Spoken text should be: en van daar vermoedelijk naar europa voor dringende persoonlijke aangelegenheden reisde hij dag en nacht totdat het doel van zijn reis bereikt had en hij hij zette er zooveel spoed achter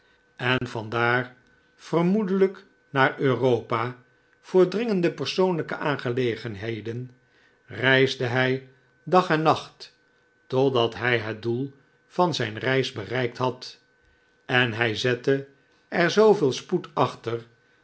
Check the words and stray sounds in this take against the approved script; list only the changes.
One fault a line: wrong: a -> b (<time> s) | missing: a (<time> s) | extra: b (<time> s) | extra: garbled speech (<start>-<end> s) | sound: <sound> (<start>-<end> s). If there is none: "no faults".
sound: dropout (0.6-0.6 s)
extra: hij (10.9 s)
missing: hij (15.0 s)